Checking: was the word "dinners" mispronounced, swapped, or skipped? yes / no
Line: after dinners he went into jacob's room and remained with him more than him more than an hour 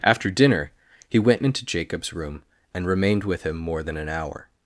yes